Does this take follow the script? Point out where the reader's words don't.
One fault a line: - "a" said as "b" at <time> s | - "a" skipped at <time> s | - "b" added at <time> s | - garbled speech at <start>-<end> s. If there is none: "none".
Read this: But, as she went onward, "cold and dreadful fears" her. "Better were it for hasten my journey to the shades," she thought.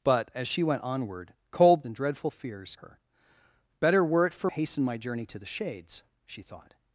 none